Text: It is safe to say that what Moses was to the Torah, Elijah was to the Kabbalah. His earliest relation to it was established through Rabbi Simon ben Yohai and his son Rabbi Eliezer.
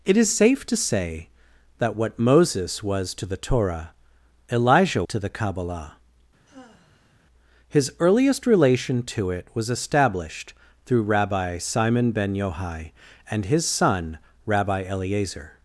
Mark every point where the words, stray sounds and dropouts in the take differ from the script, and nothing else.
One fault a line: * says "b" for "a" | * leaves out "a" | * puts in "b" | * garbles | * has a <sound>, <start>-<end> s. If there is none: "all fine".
* leaves out "was"
* has a sigh, 6.5-7.1 s